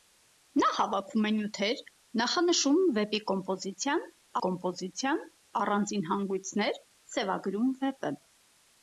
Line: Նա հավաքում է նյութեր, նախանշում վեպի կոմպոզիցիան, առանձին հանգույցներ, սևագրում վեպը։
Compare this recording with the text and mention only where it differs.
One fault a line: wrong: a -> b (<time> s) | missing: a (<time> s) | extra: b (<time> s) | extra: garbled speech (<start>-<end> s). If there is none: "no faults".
extra: կոմպոզիցիան (4.5 s)